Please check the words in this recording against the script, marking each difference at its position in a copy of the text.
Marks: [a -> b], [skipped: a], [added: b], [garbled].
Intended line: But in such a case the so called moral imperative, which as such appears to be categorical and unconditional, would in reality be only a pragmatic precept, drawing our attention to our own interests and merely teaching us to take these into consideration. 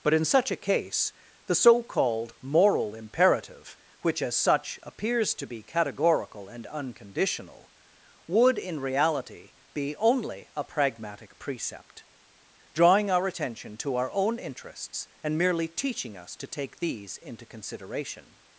But in such a case the so called moral imperative, which as such appears to be categorical and unconditional, would in reality be only a pragmatic precept, drawing our attention to our own interests and merely teaching us to take these into consideration.